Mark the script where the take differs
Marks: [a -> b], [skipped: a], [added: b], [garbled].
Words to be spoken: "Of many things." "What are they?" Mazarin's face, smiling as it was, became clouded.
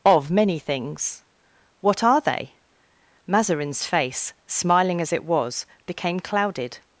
"Of many things." "What are they?" Mazarin's face, smiling as it was, became clouded.